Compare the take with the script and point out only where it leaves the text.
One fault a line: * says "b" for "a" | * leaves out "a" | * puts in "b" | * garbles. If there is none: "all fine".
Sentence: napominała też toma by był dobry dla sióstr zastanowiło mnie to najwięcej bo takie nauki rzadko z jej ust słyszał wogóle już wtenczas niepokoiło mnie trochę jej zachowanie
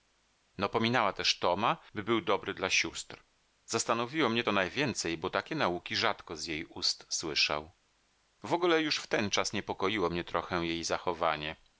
all fine